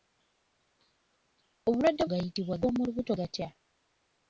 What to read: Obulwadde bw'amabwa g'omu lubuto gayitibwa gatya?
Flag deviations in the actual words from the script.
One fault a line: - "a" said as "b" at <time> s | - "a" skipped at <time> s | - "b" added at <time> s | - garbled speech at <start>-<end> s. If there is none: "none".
- "bw'amabwa" said as "gayitibwa" at 2.1 s
- "gayitibwa" skipped at 3.1 s